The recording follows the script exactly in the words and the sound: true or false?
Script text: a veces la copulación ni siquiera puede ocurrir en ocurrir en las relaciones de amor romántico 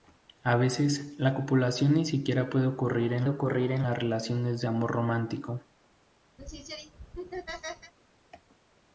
false